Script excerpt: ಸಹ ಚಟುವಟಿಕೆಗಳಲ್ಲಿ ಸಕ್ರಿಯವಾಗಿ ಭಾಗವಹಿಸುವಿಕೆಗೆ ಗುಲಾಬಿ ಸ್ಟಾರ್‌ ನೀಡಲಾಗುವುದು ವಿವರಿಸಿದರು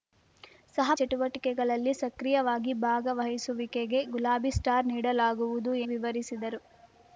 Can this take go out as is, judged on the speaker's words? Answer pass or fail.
pass